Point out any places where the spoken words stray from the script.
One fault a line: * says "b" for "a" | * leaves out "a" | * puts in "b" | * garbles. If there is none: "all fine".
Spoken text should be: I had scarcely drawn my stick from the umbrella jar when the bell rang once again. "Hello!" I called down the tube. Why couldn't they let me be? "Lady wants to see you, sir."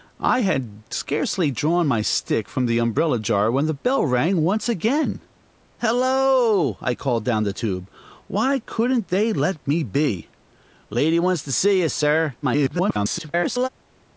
* garbles